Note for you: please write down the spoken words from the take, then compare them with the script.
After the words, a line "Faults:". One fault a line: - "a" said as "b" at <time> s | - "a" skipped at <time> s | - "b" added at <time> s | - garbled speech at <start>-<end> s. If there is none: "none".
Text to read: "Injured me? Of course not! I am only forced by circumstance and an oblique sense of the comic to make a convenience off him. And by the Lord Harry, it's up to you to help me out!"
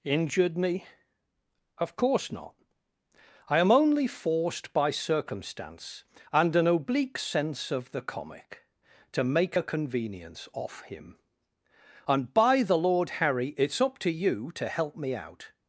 "Injured me? Of course not! I am only forced by circumstance and an oblique sense of the comic to make a convenience off him. And by the Lord Harry, it's up to you to help me out!"
Faults:
none